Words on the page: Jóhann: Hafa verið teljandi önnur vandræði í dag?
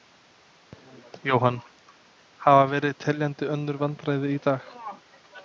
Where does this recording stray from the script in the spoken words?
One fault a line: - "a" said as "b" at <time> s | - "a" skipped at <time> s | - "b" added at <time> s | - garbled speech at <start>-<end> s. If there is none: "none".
none